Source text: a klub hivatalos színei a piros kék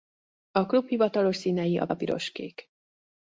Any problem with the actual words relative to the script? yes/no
yes